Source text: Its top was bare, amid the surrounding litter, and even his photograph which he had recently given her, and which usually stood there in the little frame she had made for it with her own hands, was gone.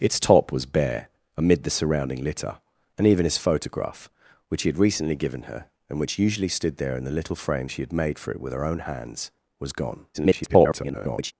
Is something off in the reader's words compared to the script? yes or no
yes